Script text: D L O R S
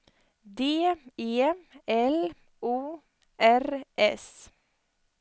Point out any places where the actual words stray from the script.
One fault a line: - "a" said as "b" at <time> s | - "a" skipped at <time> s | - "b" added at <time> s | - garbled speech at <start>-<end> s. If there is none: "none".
- "E" added at 1.2 s